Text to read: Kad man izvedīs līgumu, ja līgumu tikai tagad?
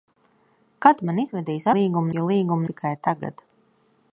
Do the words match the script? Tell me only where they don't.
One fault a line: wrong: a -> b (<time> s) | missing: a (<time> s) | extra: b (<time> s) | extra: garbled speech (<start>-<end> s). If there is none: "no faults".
no faults